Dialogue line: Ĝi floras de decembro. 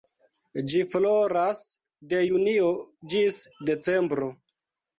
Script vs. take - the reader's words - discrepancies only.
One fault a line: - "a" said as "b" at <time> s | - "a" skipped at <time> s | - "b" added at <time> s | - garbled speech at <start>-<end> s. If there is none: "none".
- "junio ĝis" added at 2.3 s